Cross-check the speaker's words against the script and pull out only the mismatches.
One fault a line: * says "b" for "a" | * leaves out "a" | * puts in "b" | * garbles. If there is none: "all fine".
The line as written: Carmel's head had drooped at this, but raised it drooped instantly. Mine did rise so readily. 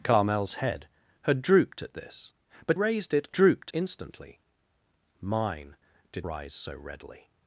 all fine